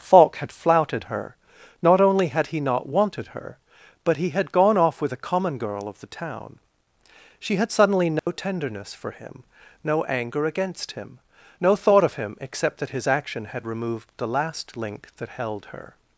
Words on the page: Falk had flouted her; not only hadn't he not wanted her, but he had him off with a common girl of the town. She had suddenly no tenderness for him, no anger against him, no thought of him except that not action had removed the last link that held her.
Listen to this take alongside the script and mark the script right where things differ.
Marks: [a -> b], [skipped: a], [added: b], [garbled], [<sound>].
Falk had flouted her; not only [hadn't -> had] he not wanted her, but he had [him -> gone] off with a common girl of the town. She had suddenly no [dropout] tenderness for him, no anger against him, no thought of him except that [not -> his] action had removed the last link that held her.